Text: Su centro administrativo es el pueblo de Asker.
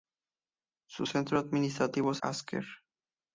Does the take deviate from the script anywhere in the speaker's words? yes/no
yes